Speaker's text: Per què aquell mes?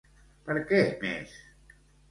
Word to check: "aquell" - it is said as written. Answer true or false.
false